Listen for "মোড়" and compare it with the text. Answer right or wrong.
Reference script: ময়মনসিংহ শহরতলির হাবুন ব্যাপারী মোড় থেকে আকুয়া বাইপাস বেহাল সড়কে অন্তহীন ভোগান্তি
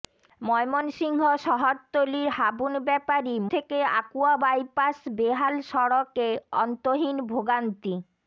wrong